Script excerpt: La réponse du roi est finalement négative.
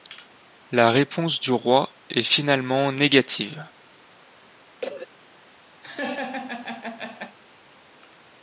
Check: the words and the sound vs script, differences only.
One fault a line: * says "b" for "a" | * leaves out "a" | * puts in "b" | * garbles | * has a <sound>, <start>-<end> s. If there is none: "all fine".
* has a cough, 4.8-5.1 s
* has a laugh, 5.8-7.4 s